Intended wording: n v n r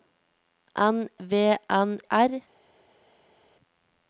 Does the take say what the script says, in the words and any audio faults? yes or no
yes